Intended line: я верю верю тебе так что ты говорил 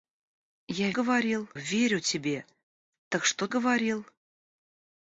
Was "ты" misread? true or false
true